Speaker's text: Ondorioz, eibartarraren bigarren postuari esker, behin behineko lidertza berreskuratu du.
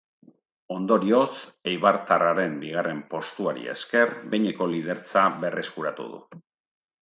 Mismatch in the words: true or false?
true